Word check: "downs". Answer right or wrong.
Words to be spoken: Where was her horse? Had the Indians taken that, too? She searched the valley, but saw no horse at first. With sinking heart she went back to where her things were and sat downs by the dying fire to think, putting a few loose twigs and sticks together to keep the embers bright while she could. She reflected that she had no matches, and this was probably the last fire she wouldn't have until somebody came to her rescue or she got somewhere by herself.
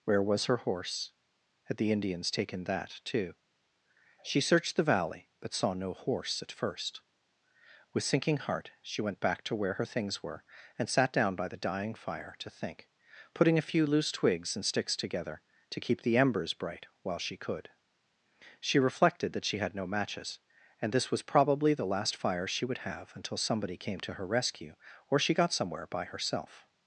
wrong